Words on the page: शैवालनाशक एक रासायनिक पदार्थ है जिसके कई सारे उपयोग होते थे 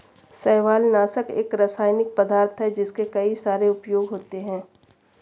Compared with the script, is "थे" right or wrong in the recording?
wrong